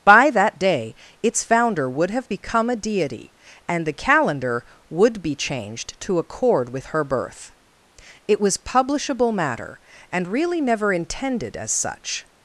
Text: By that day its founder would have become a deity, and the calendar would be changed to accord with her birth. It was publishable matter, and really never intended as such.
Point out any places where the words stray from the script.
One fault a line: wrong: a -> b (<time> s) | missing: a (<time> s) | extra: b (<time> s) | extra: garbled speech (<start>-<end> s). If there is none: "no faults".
no faults